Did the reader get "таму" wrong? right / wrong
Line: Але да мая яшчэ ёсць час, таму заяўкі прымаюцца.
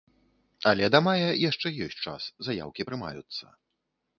wrong